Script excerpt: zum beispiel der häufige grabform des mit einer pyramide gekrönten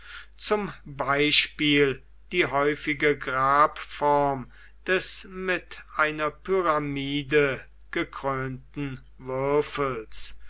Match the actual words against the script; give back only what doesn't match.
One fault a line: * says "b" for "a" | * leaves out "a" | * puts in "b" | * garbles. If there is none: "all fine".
* says "die" for "der"